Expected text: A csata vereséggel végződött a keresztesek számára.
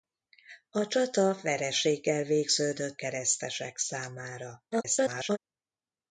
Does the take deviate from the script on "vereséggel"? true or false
false